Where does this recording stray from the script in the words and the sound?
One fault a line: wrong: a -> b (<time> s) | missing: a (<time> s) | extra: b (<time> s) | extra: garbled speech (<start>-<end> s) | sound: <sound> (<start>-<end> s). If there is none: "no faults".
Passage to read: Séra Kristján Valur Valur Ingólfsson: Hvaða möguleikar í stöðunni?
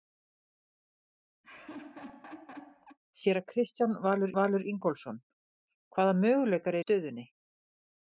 sound: laugh (1.4-3.0 s)